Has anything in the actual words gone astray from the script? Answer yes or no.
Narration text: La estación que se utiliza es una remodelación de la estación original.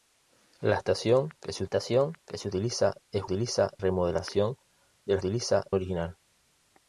yes